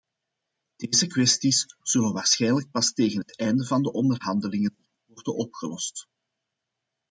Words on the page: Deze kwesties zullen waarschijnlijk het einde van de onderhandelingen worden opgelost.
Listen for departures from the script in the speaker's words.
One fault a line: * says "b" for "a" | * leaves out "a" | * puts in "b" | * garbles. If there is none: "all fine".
* puts in "pas tegen"